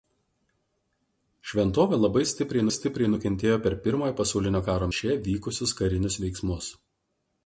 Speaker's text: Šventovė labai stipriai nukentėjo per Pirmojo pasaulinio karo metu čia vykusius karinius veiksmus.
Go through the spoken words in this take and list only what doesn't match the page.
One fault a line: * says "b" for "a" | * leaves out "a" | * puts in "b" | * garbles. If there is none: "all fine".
* puts in "stipriai"
* leaves out "metu"